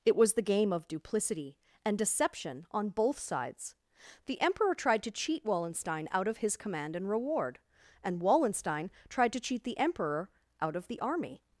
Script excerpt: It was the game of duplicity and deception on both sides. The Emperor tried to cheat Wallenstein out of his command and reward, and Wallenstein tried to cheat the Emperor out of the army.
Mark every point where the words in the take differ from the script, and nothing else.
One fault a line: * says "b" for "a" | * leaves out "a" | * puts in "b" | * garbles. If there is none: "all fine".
all fine